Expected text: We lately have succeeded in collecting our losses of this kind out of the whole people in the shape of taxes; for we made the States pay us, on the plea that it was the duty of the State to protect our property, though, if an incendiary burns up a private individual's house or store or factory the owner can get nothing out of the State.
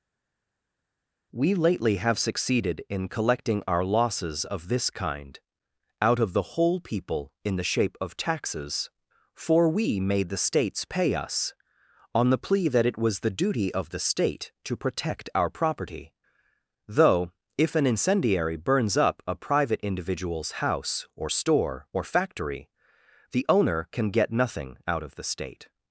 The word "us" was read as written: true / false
true